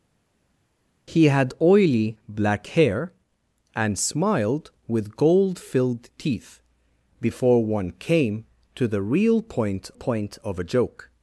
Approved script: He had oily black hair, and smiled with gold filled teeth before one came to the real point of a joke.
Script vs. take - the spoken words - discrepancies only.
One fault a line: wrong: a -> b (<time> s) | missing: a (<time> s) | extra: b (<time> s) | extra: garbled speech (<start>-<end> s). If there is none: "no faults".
extra: point (9.9 s)